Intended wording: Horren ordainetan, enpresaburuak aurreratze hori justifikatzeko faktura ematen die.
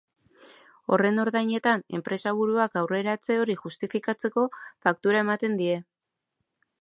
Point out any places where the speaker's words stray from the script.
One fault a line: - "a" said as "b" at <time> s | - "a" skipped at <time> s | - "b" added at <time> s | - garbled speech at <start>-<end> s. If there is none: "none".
none